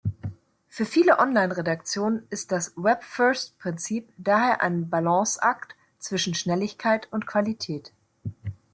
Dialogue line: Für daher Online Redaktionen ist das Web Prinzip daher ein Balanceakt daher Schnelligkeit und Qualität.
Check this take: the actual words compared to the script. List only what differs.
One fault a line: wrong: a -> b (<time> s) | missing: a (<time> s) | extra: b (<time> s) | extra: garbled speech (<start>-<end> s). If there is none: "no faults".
wrong: daher -> viele (0.8 s)
extra: First (3.0 s)
wrong: daher -> zwischen (6.0 s)